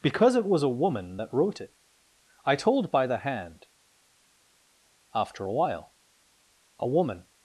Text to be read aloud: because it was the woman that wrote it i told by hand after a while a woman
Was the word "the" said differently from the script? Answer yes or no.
yes